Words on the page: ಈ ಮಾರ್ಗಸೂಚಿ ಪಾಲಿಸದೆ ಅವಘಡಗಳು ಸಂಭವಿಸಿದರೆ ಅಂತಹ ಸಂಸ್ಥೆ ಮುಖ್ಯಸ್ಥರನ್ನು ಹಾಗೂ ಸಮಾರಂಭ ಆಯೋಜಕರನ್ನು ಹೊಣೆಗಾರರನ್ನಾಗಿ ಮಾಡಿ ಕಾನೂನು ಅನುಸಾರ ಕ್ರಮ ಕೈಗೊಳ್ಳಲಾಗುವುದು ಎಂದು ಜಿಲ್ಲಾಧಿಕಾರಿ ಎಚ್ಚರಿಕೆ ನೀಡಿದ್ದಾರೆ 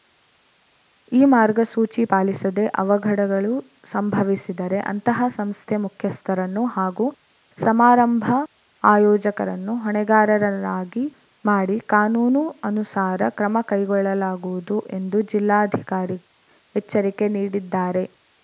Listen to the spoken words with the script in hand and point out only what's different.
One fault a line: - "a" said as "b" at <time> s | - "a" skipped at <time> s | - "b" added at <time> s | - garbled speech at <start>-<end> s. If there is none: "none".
none